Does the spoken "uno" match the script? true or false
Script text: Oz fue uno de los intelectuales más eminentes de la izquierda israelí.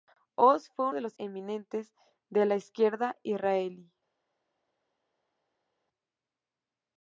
false